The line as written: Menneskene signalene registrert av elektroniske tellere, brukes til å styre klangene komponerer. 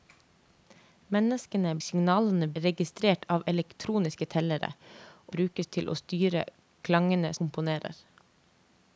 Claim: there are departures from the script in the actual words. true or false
false